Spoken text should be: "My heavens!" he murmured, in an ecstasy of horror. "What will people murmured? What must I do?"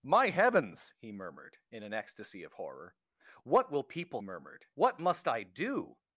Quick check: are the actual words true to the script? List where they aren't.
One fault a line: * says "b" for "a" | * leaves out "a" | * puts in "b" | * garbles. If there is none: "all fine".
all fine